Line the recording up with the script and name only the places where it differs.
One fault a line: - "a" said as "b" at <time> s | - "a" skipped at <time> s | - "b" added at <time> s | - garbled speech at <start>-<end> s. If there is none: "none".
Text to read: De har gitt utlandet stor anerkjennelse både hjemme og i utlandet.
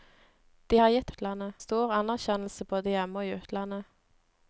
none